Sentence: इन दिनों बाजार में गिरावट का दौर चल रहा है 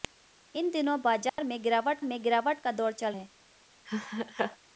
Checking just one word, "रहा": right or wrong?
wrong